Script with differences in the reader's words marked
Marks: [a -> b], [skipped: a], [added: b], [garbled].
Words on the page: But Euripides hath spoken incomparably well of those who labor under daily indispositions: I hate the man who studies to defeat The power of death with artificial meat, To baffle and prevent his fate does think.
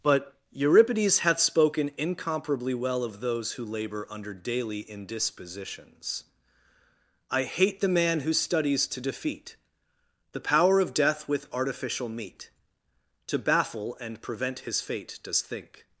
But Euripides hath spoken incomparably well of those who labor under daily indispositions: I hate the man who studies to defeat The power of death with artificial meat, To baffle and prevent his fate does think.